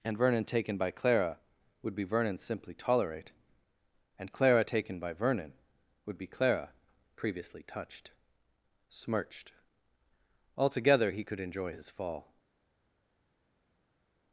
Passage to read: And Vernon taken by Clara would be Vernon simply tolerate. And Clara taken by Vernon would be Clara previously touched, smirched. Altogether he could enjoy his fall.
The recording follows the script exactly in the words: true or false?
true